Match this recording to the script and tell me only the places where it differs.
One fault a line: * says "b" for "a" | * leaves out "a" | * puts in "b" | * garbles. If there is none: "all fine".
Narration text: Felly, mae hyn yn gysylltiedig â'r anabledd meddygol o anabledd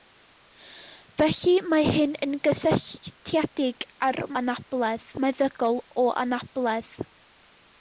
all fine